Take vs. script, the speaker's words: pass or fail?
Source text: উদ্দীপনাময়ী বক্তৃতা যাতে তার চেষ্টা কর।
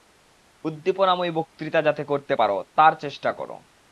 fail